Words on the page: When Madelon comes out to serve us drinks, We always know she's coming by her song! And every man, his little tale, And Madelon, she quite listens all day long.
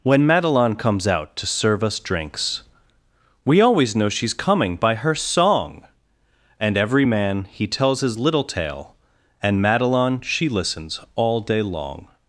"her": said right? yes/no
yes